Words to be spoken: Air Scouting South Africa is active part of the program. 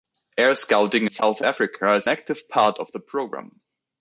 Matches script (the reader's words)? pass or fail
pass